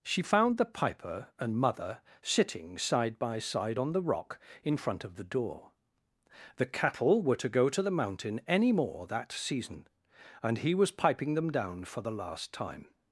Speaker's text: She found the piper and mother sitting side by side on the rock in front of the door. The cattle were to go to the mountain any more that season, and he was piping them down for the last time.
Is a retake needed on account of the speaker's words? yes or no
no